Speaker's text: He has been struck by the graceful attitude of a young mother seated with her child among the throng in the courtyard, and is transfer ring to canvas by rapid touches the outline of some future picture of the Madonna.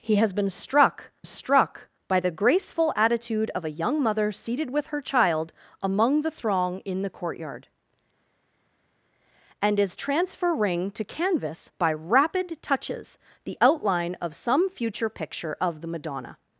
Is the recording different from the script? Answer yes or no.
yes